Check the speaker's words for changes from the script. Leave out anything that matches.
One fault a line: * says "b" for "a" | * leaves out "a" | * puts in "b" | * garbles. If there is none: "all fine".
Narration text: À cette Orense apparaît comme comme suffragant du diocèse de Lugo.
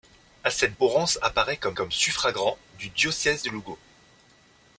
all fine